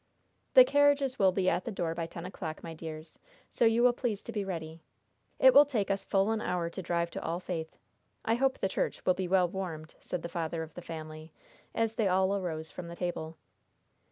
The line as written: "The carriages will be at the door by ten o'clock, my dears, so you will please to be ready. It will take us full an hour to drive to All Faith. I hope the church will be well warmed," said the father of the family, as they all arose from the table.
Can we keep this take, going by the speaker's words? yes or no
yes